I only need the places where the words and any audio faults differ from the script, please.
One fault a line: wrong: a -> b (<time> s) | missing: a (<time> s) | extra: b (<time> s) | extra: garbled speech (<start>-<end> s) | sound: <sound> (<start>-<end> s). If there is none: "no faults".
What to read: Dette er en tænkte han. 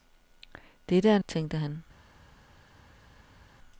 no faults